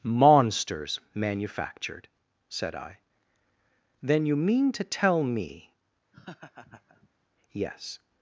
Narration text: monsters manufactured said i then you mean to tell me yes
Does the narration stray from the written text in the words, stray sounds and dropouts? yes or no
yes